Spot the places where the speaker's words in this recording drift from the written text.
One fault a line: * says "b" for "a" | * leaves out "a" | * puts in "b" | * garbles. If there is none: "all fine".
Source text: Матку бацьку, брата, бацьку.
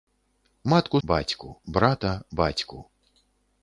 all fine